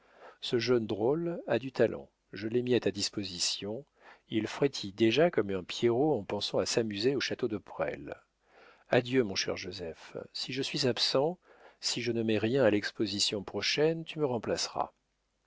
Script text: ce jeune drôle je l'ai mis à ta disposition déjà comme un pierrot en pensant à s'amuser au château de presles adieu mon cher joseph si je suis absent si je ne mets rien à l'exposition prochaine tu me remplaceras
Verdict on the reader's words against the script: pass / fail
fail